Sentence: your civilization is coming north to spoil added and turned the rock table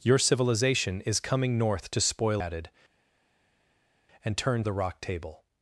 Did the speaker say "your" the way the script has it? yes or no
yes